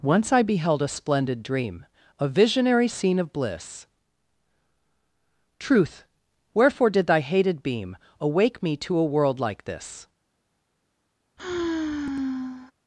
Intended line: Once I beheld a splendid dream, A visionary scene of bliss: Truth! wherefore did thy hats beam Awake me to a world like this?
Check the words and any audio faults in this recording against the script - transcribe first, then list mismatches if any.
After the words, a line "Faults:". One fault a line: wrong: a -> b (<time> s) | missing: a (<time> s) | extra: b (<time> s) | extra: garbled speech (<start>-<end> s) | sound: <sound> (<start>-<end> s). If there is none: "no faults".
Once I beheld a splendid dream, A visionary scene of bliss: Truth! wherefore did thy hated beam Awake me to a world like this?
Faults:
wrong: hats -> hated (7.2 s)
sound: sigh (11.4-12.7 s)